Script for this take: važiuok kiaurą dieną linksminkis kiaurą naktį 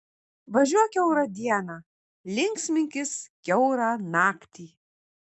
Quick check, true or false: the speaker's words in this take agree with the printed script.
true